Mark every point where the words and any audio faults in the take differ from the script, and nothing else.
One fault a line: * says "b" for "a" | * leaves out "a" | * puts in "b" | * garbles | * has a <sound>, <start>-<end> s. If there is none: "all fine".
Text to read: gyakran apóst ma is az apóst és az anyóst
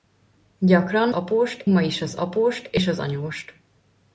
all fine